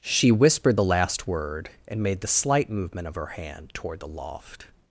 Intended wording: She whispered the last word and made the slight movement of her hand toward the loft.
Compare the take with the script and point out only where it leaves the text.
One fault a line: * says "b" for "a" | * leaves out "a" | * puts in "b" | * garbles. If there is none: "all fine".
all fine